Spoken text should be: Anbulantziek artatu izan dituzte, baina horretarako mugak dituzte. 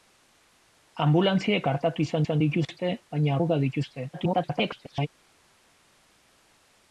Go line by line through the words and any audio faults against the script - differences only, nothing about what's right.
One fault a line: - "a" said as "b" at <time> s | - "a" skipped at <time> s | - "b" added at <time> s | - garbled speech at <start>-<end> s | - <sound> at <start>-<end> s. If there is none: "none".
- "izan" added at 2.2 s
- "horretarako" skipped at 3.4 s
- garbled speech at 4.1-5.1 s